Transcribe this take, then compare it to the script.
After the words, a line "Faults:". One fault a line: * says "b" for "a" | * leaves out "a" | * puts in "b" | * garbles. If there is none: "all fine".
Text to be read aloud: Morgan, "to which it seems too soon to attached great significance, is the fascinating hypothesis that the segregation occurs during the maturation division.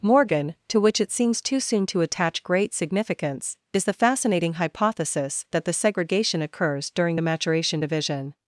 Morgan, "to which it seems too soon to attach great significance, is the fascinating hypothesis that the segregation occurs during the maturation division.
Faults:
* says "attach" for "attached"